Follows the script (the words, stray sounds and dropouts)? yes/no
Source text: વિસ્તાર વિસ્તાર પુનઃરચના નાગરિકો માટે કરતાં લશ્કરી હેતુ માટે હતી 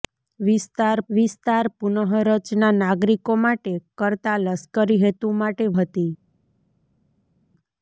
yes